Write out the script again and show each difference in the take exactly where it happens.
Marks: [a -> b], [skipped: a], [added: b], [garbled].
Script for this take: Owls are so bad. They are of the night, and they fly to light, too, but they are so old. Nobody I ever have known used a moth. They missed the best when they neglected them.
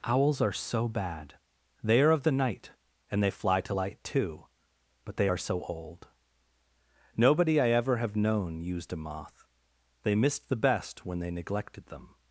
Owls are so bad. They are of the night, and they fly to light, too, but they are so old. Nobody I ever have known used a moth. They missed the best when they neglected them.